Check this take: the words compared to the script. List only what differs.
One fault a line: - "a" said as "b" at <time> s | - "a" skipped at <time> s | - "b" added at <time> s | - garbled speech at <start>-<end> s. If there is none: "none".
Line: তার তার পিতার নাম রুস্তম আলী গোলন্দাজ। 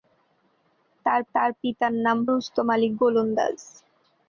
none